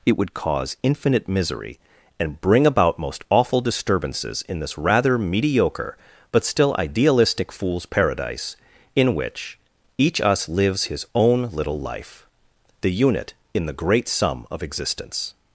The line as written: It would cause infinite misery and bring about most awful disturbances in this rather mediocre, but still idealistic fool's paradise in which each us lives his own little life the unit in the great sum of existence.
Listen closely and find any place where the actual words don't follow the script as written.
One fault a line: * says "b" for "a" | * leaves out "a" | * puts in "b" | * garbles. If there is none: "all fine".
all fine